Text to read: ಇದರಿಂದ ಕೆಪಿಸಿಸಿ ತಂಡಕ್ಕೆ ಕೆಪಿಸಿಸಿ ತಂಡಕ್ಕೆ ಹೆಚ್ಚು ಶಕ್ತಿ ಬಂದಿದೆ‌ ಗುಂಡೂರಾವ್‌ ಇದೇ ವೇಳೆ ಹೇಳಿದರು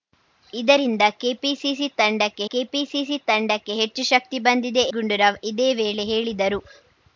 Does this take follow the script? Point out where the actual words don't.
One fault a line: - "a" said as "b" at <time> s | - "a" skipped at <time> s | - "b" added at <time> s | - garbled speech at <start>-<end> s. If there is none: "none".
none